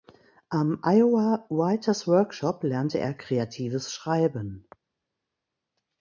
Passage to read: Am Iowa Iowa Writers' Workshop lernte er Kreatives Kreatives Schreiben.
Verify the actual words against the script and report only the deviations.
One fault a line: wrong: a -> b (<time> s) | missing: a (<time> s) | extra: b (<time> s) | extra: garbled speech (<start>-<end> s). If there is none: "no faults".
missing: Iowa (1.4 s)
missing: Kreatives (3.9 s)